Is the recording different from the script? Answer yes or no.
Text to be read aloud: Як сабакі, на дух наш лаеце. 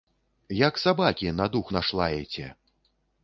no